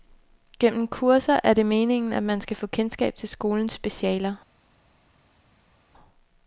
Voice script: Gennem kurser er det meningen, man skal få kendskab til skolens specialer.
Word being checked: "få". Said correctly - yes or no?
yes